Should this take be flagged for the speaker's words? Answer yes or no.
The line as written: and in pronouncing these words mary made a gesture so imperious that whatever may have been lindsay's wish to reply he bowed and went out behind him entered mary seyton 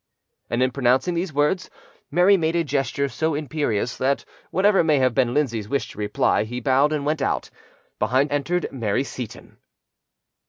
yes